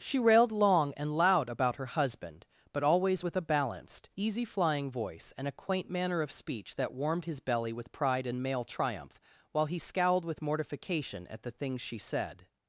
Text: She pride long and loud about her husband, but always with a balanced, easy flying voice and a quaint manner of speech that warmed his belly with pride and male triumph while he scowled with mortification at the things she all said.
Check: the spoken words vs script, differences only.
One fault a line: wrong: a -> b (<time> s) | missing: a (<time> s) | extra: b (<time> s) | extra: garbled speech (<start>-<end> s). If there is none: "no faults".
wrong: pride -> railed (0.2 s)
missing: all (12.0 s)